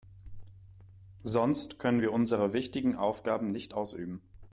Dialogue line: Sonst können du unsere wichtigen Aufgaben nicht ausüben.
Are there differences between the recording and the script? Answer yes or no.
yes